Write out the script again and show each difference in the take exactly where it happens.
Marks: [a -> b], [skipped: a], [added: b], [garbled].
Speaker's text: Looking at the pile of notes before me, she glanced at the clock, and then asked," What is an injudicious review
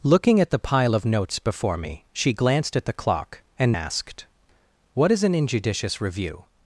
Looking at the pile of notes before me, she glanced at the clock, and [skipped: then] asked," What is an injudicious review